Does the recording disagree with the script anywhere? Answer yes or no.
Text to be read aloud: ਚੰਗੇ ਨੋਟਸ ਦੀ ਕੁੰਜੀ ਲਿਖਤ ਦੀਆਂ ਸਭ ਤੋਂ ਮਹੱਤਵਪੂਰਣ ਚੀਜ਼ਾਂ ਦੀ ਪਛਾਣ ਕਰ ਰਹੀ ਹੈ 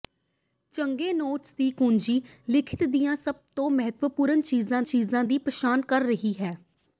yes